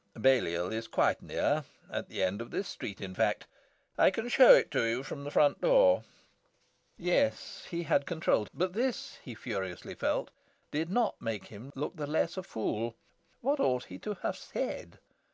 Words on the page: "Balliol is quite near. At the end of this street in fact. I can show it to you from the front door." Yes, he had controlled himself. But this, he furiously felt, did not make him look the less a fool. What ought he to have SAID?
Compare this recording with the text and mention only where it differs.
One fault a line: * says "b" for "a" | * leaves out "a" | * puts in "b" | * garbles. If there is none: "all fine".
* leaves out "himself"